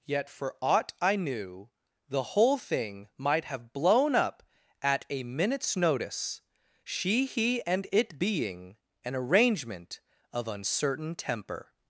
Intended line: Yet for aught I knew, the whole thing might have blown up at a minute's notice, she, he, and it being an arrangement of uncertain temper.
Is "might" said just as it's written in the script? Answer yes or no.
yes